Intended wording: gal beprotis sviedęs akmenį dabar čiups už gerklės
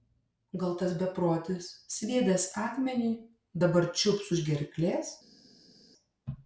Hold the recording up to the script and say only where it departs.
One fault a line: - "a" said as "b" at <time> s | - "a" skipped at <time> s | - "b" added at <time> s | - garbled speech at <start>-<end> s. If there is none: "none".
- "tas" added at 0.8 s